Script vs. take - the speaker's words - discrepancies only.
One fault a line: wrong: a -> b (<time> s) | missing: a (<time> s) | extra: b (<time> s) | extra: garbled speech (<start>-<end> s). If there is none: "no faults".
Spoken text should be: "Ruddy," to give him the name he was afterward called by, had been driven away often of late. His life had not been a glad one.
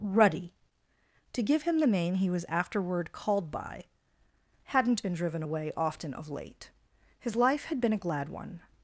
wrong: had -> hadn't (4.7 s)
missing: not (7.8 s)